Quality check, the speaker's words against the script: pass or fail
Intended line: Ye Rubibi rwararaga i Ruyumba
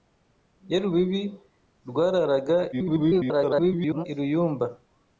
fail